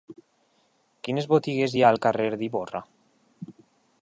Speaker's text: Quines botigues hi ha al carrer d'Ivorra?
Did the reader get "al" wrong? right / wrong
right